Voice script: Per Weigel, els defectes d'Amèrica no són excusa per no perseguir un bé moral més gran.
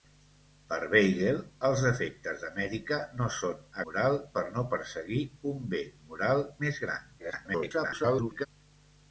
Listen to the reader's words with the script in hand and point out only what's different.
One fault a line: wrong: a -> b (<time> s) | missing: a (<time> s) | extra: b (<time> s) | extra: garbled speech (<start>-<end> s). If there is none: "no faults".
wrong: excusa -> moral (3.9 s)
extra: garbled speech (7.2-8.5 s)